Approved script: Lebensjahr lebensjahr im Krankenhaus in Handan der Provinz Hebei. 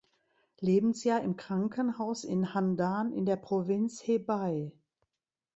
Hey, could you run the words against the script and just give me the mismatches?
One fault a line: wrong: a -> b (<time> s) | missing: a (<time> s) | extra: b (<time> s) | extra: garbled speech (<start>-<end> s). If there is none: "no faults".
missing: lebensjahr (1.2 s)
extra: in (3.1 s)